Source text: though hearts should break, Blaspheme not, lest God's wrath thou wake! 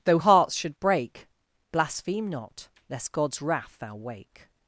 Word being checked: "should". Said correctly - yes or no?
yes